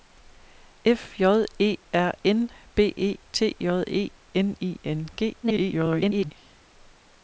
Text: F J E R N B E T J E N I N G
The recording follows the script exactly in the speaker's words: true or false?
false